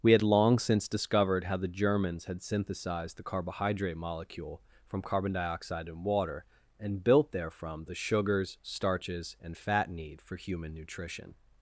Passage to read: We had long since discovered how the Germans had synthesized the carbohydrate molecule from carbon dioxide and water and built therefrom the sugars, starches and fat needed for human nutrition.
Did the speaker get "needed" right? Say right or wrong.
wrong